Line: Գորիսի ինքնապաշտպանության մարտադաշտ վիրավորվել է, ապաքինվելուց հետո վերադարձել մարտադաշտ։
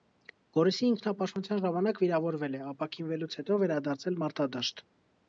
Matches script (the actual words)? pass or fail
fail